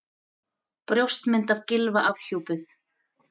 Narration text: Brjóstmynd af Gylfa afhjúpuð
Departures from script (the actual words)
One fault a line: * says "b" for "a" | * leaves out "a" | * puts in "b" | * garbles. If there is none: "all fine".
all fine